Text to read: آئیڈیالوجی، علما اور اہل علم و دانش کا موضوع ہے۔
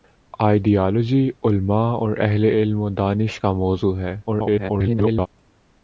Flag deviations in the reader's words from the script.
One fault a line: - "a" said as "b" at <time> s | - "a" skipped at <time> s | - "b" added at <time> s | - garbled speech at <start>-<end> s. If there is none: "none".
- garbled speech at 4.3-5.3 s